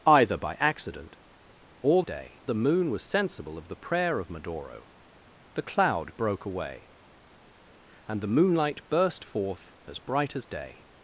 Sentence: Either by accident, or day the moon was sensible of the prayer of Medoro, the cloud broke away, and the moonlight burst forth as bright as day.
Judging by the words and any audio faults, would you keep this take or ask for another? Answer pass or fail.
pass